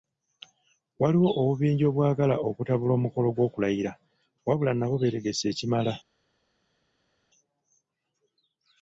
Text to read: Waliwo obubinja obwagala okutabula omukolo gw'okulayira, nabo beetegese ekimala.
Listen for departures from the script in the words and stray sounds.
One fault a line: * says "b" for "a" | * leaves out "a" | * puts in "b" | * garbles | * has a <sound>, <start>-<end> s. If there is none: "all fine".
* puts in "wabula"